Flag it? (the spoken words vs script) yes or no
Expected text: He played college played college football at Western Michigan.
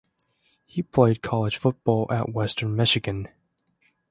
yes